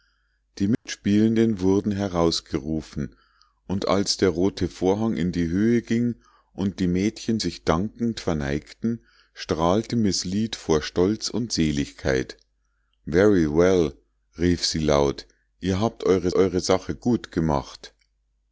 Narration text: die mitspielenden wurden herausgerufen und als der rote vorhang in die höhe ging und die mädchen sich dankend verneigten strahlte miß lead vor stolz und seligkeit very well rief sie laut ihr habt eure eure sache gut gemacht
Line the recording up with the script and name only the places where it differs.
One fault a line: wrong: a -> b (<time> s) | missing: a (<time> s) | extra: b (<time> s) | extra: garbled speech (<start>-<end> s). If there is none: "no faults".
no faults